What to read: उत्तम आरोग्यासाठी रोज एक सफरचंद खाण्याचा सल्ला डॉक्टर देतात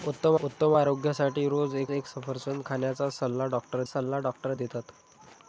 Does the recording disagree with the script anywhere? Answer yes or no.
yes